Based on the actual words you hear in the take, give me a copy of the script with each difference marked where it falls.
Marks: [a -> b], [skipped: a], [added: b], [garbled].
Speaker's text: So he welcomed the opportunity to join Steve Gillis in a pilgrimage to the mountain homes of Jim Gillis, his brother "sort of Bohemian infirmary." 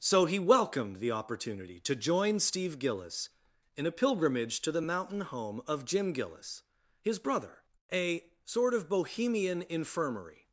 So he welcomed the opportunity to join Steve Gillis in a pilgrimage to the mountain [homes -> home] of Jim Gillis, his brother [added: a] "sort of Bohemian infirmary."